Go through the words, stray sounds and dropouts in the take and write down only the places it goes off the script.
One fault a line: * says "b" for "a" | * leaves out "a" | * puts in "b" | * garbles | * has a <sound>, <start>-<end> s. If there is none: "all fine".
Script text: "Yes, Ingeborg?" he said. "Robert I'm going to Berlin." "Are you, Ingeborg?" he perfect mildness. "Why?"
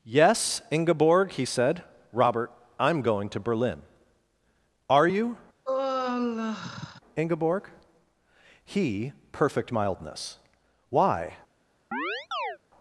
* has a sigh, 5.7-7.0 s
* has a chirp, 11.9-12.6 s